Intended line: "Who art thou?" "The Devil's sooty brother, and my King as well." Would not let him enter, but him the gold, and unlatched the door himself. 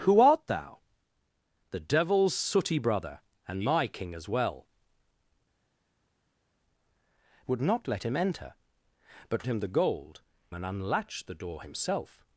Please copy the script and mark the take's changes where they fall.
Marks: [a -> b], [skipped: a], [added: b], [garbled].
"Who art thou?" "The Devil's sooty brother, and my King as well." Would not let him enter, but him the gold, and unlatched the door himself.